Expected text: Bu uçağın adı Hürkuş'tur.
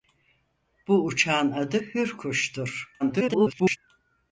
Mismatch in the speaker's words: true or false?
true